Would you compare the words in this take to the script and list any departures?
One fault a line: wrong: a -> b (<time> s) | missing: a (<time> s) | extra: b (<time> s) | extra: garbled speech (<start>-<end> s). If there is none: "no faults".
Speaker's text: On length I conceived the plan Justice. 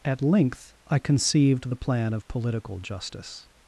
wrong: On -> At (0.0 s)
extra: of Political (2.1 s)